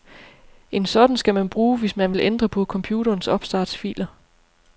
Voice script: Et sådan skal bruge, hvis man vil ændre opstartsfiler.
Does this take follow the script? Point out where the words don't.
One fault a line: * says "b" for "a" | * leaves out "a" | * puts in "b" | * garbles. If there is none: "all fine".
* says "En" for "Et"
* puts in "man"
* puts in "på computerens"